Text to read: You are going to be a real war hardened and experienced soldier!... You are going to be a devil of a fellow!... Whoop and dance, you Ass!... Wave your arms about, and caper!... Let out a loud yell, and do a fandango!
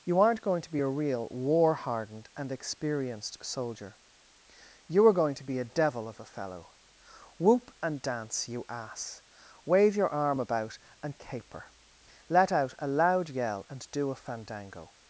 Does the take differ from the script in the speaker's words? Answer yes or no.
yes